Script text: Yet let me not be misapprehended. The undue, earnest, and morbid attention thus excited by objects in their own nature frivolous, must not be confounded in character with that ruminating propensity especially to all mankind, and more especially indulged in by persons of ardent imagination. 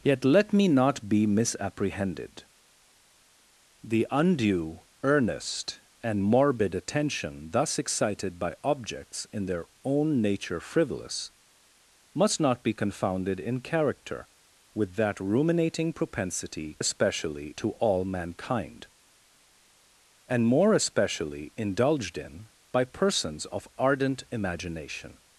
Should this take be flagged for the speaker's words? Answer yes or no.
no